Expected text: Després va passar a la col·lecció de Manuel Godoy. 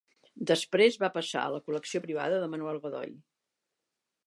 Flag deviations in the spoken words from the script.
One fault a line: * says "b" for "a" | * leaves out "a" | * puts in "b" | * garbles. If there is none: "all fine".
* puts in "privada"